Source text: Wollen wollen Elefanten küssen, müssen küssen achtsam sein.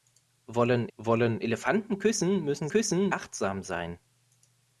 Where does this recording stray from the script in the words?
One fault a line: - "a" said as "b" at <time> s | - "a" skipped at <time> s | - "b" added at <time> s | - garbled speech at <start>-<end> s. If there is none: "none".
none